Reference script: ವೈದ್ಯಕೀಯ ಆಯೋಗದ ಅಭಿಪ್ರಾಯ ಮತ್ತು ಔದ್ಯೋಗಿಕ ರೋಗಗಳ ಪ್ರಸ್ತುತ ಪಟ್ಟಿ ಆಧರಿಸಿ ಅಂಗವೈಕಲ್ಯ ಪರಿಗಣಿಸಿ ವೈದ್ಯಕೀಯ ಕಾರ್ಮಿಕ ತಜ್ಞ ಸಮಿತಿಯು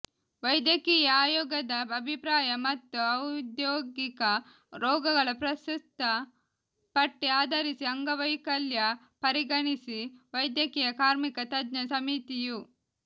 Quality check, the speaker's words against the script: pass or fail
pass